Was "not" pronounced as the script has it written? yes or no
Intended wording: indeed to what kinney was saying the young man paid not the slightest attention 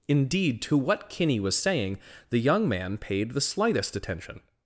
no